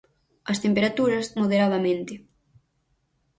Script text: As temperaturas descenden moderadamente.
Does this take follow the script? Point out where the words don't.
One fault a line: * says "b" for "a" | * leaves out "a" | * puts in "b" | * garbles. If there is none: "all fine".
* leaves out "descenden"